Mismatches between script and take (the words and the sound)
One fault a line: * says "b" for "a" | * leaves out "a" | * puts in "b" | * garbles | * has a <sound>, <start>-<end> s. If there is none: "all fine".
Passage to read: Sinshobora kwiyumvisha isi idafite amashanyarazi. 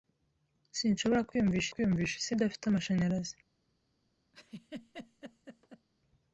* puts in "kwiyumvisha"
* has a laugh, 4.3-5.9 s